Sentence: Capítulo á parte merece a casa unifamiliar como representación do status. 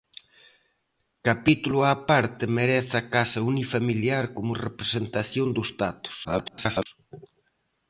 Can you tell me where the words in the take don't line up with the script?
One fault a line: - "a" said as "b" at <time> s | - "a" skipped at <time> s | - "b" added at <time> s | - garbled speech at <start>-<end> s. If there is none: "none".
- garbled speech at 6.2-6.9 s